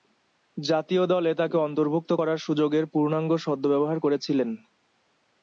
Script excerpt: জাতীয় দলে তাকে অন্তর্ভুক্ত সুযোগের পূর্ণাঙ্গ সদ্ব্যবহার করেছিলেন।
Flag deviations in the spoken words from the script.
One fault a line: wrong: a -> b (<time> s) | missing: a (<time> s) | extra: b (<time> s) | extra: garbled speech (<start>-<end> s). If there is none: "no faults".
extra: করার (2.2 s)